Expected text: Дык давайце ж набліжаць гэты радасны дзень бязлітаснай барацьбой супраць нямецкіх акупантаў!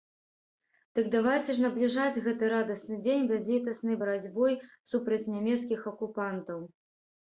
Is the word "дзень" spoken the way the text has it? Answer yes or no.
yes